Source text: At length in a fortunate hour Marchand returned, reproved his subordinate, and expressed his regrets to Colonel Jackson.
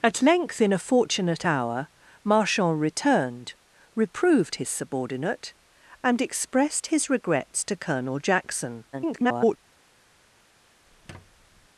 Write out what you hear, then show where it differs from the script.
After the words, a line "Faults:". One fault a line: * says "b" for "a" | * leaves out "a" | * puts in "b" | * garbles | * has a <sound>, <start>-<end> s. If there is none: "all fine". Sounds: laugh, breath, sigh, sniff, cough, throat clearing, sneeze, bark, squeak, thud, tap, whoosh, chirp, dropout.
At length in a fortunate hour Marchand returned, reproved his subordinate, and expressed his regrets to Colonel Jackson. [garbled]
Faults:
* garbles
* has a squeak, 10.9-11.7 s